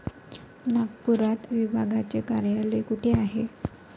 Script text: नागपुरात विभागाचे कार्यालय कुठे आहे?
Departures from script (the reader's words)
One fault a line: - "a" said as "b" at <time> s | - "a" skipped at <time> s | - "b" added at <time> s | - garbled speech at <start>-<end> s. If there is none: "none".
none